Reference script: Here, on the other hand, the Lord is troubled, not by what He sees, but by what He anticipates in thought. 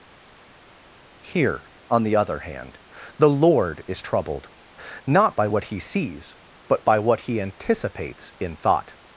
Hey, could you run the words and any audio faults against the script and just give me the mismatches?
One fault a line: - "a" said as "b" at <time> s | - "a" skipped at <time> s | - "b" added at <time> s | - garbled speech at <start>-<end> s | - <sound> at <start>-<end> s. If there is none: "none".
none